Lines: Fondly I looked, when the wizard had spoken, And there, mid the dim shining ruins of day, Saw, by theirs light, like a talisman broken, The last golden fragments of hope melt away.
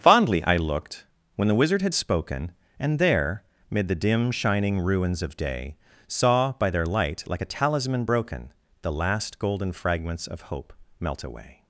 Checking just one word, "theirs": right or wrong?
wrong